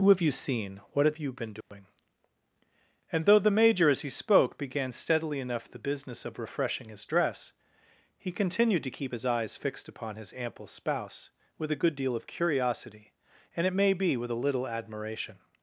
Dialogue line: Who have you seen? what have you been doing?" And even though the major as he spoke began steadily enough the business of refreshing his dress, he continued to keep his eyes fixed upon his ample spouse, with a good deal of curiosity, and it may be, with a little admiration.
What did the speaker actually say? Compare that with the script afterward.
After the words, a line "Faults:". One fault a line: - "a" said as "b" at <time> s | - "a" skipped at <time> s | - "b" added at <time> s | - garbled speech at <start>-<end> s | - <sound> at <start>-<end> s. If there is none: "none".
Who have you seen? what have you been doing?" And though the major as he spoke began steadily enough the business of refreshing his dress, he continued to keep his eyes fixed upon his ample spouse, with a good deal of curiosity, and it may be, with a little admiration.
Faults:
- dropout at 1.6-1.7 s
- "even" skipped at 3.3 s